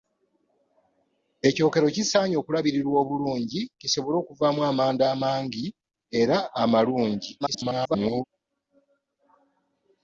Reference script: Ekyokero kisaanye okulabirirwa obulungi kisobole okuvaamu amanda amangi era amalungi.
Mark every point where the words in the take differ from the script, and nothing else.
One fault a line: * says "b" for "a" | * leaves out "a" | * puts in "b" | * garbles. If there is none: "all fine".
* garbles